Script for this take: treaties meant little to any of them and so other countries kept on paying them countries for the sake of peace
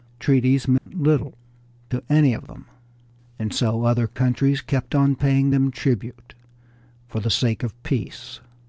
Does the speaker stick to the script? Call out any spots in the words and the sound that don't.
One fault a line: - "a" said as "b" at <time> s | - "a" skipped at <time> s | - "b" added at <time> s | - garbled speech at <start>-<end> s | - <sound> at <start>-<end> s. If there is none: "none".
- dropout at 0.8-0.9 s
- "countries" said as "tribute" at 5.7 s